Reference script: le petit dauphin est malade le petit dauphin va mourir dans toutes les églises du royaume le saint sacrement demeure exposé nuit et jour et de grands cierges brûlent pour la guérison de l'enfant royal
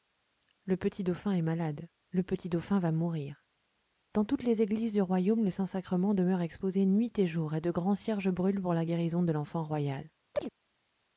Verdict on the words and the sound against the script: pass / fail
fail